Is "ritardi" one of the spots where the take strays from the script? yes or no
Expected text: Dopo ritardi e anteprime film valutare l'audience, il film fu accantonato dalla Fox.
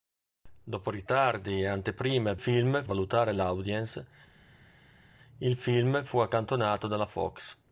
no